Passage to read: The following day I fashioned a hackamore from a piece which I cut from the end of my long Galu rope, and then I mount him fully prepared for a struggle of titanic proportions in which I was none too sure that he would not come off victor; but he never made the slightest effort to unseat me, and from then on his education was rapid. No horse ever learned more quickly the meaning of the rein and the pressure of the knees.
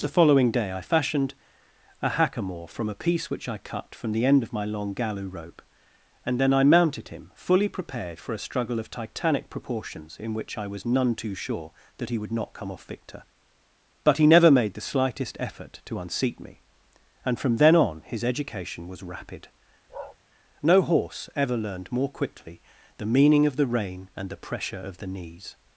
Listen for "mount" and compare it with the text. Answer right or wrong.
wrong